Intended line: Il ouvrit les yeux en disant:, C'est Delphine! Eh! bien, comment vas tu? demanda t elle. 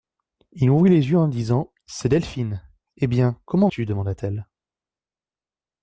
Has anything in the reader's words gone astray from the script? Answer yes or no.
yes